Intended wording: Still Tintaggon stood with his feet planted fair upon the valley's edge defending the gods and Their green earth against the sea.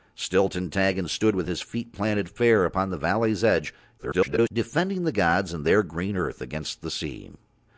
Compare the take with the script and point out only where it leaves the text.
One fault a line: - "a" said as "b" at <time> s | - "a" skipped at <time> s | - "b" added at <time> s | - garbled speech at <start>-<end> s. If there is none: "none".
- garbled speech at 4.0-4.5 s